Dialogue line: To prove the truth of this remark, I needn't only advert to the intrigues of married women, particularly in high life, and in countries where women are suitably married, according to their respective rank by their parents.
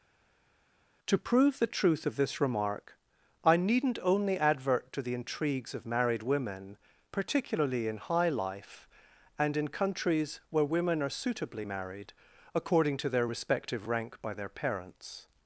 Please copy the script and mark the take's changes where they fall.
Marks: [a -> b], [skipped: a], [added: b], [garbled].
To prove the truth of this remark, I needn't only advert to the intrigues of married women, particularly in high life, and in countries where women are suitably married, according to their respective rank by their parents.